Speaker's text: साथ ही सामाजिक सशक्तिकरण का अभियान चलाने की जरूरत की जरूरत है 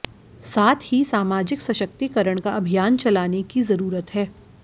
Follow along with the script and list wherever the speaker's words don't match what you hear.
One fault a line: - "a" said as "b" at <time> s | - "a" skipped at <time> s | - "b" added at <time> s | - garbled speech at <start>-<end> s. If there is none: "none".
- "की जरूरत" skipped at 4.1 s